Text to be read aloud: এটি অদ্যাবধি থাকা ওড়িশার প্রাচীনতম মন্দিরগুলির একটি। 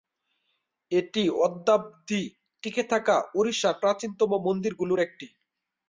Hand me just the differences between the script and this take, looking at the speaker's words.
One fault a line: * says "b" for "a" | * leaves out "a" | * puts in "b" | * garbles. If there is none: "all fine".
* puts in "টিকে"